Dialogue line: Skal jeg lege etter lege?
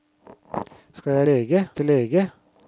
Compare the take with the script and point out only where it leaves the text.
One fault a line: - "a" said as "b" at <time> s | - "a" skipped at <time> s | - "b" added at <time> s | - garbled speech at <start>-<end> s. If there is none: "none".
none